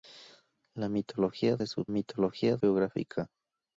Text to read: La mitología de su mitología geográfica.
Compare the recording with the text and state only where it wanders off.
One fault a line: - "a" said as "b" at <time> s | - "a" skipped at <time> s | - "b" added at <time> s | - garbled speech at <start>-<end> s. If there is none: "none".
none